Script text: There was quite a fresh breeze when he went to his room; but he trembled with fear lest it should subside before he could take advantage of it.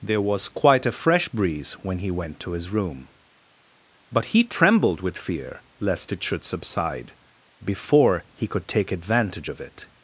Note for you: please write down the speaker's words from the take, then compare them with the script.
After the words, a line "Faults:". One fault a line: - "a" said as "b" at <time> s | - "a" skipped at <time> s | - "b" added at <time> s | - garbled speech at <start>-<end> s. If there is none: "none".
There was quite a fresh breeze when he went to his room; but he trembled with fear lest it should subside before he could take advantage of it.
Faults:
none